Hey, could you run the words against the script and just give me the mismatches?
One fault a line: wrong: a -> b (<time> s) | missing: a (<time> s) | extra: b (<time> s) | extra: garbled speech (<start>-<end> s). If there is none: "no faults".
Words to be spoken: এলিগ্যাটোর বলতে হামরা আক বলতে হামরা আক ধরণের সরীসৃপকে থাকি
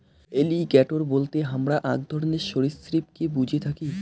missing: বলতে হামরা আক (2.0 s)
extra: বুঝে (3.4 s)